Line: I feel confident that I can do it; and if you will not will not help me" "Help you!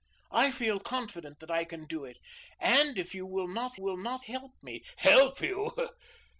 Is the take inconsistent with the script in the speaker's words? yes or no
no